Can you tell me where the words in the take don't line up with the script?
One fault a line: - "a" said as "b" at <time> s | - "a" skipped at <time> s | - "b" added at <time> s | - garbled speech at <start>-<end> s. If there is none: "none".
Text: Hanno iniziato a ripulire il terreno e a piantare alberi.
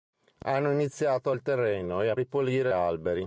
- "ripulire" skipped at 1.3 s
- "piantare" said as "ripulire" at 2.2 s